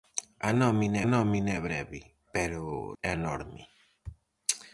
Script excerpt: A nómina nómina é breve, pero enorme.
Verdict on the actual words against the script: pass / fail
pass